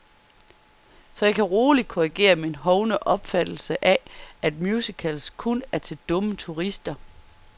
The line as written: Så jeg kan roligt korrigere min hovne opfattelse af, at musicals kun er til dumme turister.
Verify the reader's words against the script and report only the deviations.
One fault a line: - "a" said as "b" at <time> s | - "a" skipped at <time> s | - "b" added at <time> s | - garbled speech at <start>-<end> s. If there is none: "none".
none